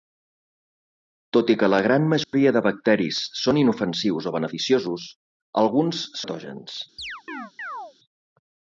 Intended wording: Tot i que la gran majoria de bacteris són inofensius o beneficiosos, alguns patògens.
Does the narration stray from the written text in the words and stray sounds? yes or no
yes